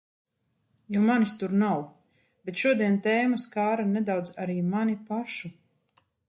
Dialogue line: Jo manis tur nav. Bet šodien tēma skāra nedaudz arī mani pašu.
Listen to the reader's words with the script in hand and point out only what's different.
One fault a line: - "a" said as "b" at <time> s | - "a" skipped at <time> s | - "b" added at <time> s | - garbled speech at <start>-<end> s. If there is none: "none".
none